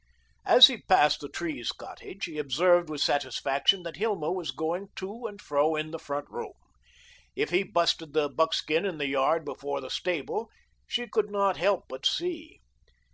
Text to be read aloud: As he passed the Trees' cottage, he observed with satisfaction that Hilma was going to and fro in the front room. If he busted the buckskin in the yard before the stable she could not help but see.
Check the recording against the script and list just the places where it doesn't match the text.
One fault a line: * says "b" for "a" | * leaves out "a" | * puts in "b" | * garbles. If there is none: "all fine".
all fine